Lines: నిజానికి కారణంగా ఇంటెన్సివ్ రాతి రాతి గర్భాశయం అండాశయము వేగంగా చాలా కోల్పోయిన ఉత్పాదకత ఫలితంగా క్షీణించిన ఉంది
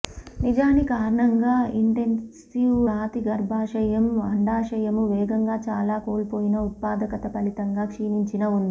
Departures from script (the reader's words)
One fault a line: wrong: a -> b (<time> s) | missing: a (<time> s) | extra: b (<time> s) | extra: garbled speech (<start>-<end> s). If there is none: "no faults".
missing: రాతి (3.2 s)